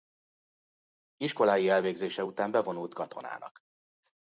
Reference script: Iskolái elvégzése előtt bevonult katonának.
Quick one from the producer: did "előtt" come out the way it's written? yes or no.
no